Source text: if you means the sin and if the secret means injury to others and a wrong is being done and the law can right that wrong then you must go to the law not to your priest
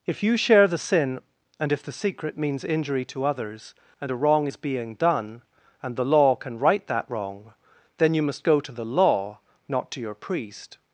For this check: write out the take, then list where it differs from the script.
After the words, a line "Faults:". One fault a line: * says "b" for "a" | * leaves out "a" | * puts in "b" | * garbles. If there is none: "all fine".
if you share the sin and if the secret means injury to others and a wrong is being done and the law can right that wrong then you must go to the law not to your priest
Faults:
* says "share" for "means"